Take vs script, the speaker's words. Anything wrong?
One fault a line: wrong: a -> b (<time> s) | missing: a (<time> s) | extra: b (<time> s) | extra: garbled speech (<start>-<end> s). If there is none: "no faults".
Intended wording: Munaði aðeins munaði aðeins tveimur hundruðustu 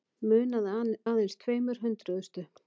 missing: munaði aðeins (1.4 s)